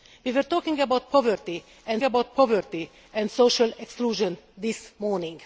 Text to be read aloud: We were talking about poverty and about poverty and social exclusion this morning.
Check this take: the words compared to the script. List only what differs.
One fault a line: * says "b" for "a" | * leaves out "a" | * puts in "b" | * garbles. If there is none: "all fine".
all fine